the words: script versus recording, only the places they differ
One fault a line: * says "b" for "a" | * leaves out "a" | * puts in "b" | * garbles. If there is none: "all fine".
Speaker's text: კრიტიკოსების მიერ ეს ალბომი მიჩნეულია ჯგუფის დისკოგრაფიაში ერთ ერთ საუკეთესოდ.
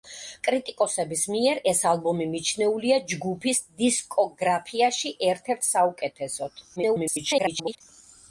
* garbles